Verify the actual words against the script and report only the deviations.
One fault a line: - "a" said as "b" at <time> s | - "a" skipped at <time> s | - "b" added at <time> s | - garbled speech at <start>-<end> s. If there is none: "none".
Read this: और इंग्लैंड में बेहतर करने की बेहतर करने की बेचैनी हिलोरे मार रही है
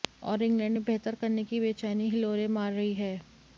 - "बेहतर करने की" skipped at 1.6 s